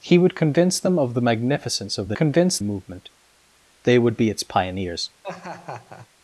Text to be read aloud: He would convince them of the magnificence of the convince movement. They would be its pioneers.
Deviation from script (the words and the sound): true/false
true